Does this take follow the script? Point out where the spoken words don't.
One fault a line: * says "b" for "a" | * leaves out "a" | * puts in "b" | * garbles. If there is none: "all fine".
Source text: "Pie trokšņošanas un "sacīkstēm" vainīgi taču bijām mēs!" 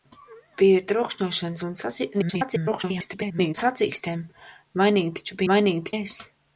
* garbles
* says "vainīgi" for "bijām"